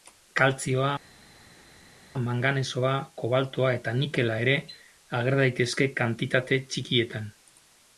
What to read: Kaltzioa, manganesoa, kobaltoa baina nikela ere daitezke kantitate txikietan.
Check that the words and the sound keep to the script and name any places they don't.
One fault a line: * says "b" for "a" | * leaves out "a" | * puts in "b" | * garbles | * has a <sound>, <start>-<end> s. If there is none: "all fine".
* says "eta" for "baina"
* puts in "ager"